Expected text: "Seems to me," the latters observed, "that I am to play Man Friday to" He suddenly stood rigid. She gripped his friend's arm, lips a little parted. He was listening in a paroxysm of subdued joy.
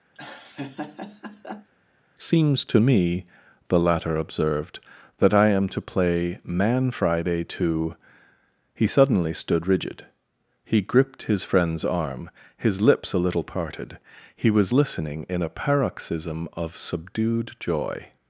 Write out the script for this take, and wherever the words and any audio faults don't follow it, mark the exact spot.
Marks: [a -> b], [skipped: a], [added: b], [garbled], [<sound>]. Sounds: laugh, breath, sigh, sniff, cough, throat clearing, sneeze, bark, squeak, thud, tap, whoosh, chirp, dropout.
[laugh] "Seems to me," the [latters -> latter] observed, "that I am to play Man Friday to" He suddenly stood rigid. [She -> He] gripped his friend's arm, [added: his] lips a little parted. He was listening in a paroxysm of subdued joy.